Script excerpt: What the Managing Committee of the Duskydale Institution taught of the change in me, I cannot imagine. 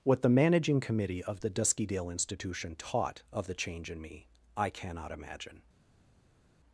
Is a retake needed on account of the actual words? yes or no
no